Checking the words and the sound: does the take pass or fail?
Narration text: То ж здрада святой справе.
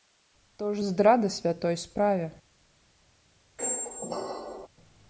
fail